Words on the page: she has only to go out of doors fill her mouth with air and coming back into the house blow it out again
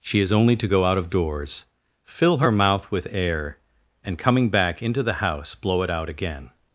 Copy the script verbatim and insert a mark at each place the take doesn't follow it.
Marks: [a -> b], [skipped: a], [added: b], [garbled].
she [has -> is] only to go out of doors fill her mouth with air and coming back into the house blow it out again